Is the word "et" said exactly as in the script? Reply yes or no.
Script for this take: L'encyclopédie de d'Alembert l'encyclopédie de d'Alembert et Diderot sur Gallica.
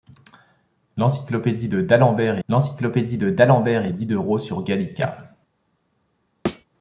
yes